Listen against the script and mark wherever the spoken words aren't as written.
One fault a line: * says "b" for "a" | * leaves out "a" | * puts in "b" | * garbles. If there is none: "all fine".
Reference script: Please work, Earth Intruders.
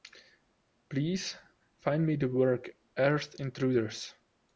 * puts in "find me the"